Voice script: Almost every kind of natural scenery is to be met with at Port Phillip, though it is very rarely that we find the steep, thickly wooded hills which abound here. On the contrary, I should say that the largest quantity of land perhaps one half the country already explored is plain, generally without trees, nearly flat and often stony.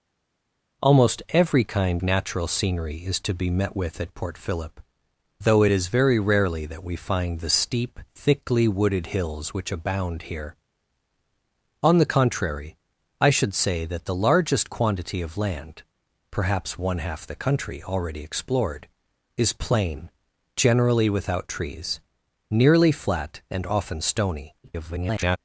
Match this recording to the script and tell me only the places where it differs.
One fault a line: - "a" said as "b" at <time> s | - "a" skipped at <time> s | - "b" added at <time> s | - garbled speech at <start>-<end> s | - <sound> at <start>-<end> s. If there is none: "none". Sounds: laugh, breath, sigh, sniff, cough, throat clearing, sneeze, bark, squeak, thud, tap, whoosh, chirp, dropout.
- "of" skipped at 2.0 s
- garbled speech at 24.6-25.4 s